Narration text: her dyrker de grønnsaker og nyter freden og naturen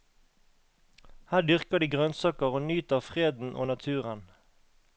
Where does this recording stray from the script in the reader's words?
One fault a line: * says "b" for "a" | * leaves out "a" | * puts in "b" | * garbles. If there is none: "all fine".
all fine